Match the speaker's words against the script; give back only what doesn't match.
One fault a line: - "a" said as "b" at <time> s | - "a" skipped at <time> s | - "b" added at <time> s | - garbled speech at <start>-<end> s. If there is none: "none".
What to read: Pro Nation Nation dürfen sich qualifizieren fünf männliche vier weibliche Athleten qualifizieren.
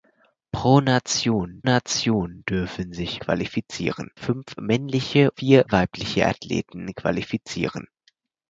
none